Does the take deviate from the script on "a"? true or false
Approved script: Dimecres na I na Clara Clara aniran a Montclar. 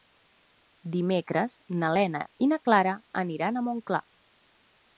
false